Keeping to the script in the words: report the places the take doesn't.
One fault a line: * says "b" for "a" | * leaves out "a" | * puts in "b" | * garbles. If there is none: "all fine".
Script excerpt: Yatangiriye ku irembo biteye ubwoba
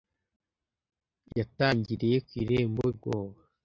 * leaves out "biteye"